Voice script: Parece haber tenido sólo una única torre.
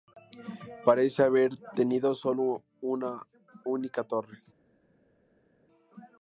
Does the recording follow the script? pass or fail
pass